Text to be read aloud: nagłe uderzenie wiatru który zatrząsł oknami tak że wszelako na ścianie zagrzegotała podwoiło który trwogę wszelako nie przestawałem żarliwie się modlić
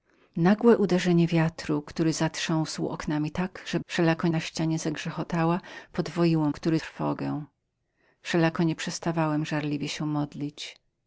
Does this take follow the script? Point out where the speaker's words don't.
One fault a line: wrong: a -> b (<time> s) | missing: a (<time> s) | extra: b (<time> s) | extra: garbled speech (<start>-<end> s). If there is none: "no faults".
no faults